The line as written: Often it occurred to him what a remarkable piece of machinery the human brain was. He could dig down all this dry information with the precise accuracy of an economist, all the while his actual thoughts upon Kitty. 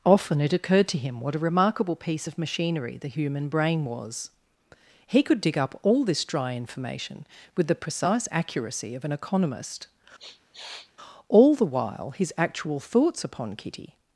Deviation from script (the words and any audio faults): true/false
true